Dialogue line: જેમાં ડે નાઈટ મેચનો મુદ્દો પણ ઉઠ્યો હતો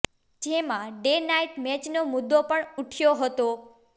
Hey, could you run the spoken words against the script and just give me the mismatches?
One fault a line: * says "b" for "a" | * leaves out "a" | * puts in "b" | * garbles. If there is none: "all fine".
all fine